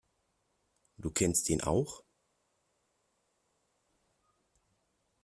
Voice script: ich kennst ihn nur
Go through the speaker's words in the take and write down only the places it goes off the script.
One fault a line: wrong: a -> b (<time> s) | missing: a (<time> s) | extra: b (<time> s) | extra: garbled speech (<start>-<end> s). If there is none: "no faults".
wrong: ich -> du (1.0 s)
wrong: nur -> auch (1.6 s)